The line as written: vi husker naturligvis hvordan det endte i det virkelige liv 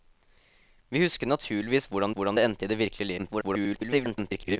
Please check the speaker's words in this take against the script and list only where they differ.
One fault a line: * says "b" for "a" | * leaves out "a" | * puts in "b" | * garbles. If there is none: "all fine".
* puts in "hvordan"
* garbles